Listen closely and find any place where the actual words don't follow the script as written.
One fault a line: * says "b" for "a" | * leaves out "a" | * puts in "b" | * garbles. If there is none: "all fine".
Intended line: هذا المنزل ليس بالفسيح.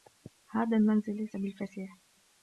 all fine